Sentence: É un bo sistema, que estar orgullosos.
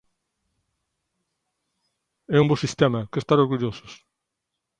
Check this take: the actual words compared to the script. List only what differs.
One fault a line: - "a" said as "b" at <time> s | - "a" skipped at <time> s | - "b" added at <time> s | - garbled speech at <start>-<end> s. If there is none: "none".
none